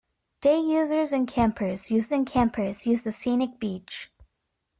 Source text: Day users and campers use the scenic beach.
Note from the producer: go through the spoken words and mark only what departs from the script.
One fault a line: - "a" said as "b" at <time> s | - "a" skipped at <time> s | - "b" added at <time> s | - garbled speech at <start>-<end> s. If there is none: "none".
- "and campers use" added at 2.1 s